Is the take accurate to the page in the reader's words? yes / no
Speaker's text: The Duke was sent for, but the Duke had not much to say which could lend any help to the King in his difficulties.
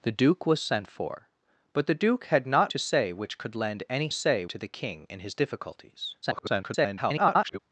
no